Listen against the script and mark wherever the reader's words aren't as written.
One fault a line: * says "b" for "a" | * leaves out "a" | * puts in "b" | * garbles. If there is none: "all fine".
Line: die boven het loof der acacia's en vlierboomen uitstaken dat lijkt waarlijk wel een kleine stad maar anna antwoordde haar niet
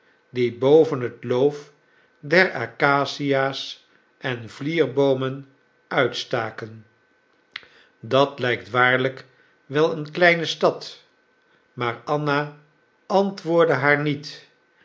all fine